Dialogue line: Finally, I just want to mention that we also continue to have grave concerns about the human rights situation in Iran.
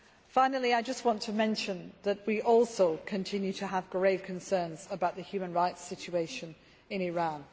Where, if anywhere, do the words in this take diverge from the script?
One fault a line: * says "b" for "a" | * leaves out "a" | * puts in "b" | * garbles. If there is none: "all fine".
all fine